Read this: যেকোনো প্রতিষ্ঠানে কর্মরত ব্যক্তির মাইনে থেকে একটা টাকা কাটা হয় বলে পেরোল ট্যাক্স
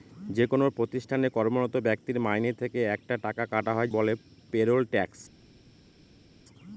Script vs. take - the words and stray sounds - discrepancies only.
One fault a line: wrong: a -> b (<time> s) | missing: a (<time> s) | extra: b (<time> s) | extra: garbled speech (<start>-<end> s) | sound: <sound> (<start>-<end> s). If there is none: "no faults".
no faults